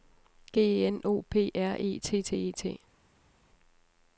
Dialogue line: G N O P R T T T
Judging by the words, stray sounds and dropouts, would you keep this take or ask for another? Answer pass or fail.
fail